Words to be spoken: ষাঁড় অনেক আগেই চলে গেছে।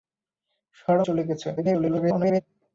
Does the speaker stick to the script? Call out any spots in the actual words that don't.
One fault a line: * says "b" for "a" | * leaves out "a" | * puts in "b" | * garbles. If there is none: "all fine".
* leaves out "অনেক আগেই"
* garbles